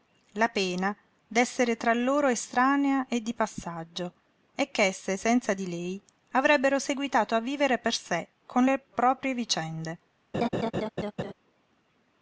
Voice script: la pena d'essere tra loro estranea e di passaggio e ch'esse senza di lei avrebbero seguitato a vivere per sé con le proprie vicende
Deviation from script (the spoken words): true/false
false